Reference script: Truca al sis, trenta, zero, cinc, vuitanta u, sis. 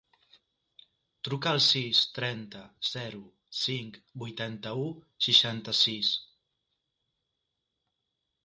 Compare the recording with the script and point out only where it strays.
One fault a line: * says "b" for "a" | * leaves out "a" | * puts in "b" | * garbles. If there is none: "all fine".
* puts in "seixanta"